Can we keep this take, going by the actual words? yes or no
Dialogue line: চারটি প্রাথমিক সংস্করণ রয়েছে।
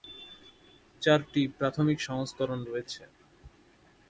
yes